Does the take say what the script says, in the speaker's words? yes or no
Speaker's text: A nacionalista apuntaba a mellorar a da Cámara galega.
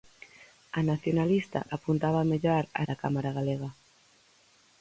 yes